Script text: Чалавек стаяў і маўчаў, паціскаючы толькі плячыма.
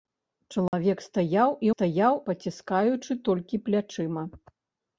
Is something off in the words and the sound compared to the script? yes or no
yes